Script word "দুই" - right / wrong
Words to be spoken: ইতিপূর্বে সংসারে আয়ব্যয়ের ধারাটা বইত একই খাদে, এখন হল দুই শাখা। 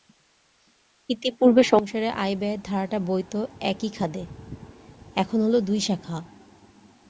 right